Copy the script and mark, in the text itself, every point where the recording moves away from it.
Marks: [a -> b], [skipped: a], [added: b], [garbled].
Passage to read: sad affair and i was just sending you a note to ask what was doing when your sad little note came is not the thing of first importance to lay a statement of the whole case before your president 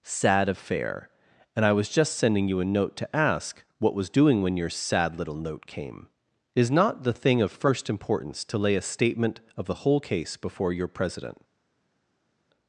sad affair and i was just sending you a note to ask what was doing when your sad little note came is not the thing of first importance to lay a statement of the whole case before your president